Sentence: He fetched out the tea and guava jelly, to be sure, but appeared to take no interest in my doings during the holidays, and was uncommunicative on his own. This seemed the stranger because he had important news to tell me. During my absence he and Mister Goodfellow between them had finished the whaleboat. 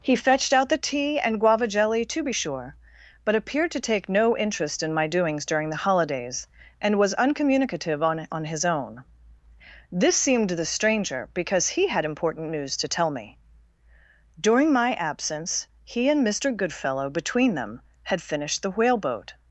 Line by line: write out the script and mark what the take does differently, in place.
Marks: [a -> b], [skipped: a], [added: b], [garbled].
He fetched out the tea and guava jelly, to be sure, but appeared to take no interest in my doings during the holidays, and was uncommunicative on [added: on] his own. This seemed the stranger because he had important news to tell me. During my absence he and Mister Goodfellow between them had finished the whaleboat.